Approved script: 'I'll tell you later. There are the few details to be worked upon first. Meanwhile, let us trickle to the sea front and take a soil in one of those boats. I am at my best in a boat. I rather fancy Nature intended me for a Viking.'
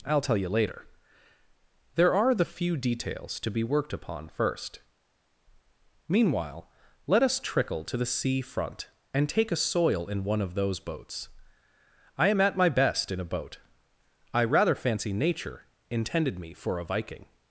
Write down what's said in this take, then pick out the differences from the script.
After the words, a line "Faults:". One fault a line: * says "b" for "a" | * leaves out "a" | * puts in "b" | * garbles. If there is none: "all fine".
'I'll tell you later. There are the few details to be worked upon first. Meanwhile, let us trickle to the sea front and take a soil in one of those boats. I am at my best in a boat. I rather fancy Nature intended me for a Viking.'
Faults:
all fine